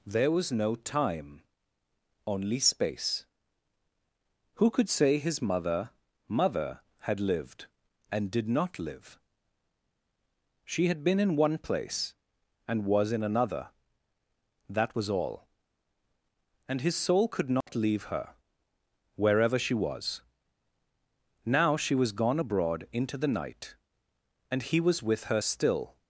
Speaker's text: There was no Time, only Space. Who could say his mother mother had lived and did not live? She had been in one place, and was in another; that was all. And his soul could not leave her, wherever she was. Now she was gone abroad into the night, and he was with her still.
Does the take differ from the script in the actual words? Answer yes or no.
no